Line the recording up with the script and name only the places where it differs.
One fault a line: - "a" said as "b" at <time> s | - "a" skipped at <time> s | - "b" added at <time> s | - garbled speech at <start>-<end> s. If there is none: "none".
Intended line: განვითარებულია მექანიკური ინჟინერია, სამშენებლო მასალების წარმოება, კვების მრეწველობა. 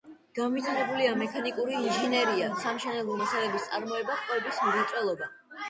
none